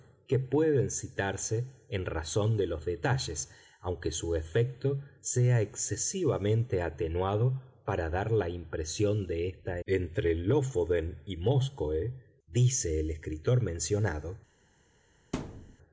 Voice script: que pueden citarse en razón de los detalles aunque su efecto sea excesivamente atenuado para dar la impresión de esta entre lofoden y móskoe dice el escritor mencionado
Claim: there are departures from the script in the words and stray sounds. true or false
true